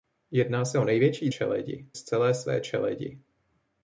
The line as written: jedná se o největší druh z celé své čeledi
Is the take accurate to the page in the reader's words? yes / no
no